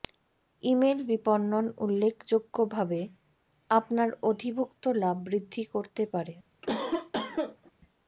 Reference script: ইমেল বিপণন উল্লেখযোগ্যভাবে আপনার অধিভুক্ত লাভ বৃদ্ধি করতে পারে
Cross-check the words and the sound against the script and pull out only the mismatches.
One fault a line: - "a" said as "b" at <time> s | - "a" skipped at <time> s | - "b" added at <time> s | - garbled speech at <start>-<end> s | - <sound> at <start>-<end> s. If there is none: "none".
- cough at 6.6-7.7 s